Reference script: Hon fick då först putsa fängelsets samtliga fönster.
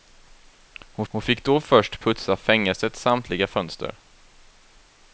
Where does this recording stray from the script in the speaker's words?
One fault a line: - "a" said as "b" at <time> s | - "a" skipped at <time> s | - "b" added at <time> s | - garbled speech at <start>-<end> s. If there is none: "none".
- "hon" added at 1.1 s